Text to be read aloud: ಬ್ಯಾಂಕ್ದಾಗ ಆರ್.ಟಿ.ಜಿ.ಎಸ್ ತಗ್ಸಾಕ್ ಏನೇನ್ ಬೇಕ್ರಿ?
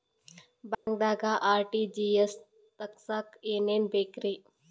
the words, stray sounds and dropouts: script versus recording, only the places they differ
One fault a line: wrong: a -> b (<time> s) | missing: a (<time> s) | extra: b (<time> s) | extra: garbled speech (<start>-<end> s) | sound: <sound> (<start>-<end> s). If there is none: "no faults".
sound: dropout (0.7-0.9 s)